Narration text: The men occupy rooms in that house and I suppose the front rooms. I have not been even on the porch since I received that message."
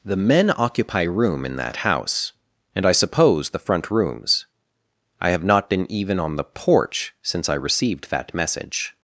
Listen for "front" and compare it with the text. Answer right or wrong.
right